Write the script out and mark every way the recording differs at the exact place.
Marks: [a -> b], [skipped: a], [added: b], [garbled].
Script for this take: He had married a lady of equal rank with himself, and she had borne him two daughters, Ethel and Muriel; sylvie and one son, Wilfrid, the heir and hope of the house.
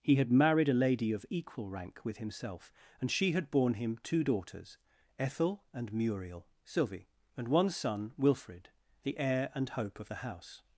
He had married a lady of equal rank with himself, and she had borne him two daughters, Ethel and Muriel; sylvie and one son, Wilfrid, the heir and hope of the house.